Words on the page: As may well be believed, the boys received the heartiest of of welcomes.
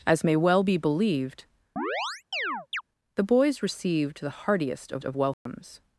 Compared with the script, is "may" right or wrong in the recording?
right